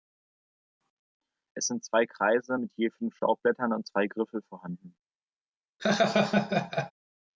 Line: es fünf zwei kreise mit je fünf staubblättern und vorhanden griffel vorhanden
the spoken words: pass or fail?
fail